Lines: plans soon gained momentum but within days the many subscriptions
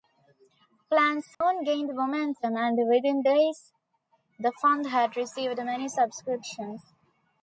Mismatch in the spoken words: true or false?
true